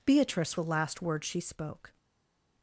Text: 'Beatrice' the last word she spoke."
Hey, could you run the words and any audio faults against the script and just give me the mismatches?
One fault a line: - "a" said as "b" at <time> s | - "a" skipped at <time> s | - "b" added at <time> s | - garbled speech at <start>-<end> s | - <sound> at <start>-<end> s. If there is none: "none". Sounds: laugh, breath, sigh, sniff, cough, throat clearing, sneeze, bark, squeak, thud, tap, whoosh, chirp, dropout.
none